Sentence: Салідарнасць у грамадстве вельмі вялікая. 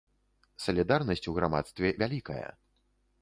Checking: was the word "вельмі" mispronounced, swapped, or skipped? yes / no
yes